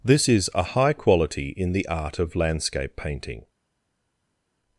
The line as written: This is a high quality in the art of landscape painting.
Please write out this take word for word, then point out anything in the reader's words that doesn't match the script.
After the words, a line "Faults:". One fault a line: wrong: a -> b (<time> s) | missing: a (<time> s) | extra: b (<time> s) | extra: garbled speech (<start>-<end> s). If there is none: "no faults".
This is a high quality in the art of landscape painting.
Faults:
no faults